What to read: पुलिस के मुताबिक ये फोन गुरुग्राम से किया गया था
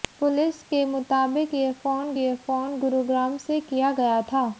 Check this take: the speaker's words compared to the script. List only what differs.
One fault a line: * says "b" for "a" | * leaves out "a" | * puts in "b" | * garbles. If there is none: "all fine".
* puts in "ये फोन"